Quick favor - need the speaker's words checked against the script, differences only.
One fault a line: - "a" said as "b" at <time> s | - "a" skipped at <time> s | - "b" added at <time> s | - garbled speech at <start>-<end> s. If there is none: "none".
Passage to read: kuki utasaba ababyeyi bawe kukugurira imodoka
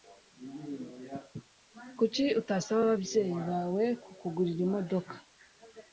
none